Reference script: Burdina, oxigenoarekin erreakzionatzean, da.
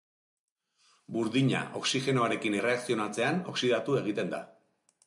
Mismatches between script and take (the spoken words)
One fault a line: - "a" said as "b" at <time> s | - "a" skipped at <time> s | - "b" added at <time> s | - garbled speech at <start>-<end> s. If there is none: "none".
- "oxidatu egiten" added at 3.6 s